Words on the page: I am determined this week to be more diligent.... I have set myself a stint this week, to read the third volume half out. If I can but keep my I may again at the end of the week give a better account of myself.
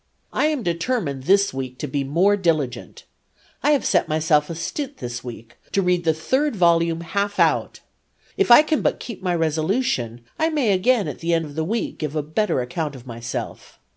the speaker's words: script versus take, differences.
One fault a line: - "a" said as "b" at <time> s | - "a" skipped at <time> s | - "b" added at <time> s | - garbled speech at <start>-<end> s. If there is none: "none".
- "resolution" added at 9.3 s